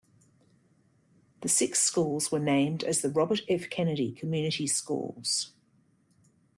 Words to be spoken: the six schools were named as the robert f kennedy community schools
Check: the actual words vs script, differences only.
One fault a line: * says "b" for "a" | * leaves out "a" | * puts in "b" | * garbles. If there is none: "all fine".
all fine